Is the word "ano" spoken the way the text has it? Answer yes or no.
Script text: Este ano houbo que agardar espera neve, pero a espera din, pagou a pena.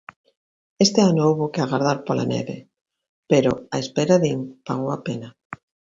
yes